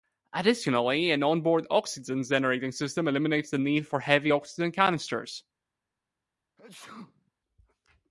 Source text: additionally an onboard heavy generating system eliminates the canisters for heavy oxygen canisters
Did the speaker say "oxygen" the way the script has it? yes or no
yes